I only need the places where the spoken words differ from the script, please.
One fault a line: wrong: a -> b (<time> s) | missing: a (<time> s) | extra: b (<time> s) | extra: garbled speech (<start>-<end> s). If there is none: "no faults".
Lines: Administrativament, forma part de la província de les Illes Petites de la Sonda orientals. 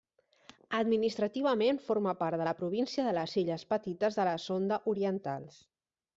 no faults